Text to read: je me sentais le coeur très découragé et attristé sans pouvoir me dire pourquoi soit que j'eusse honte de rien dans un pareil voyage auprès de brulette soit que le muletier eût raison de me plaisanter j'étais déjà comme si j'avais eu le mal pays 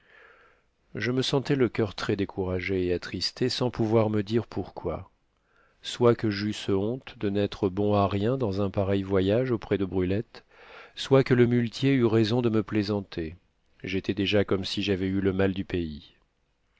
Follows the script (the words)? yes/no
no